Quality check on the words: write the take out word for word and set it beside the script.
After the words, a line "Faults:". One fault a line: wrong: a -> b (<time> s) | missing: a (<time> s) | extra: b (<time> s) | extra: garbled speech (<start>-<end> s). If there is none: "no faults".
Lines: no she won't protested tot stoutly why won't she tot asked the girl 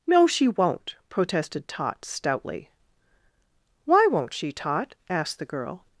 no she won't protested tot stoutly why won't she tot asked the girl
Faults:
no faults